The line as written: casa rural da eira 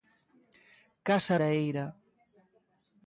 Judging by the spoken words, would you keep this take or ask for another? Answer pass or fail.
fail